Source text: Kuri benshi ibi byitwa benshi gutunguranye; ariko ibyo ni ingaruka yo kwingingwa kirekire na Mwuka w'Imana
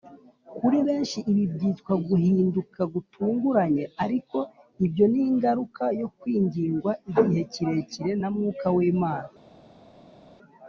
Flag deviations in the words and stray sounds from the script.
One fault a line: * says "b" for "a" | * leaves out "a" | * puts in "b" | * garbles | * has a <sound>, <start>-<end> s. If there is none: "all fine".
* says "guhinduka" for "benshi"
* puts in "igihe"